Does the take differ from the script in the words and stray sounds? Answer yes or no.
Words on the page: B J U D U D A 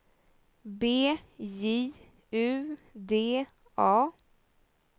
yes